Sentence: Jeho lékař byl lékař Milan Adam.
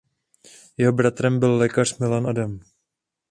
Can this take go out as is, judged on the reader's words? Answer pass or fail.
fail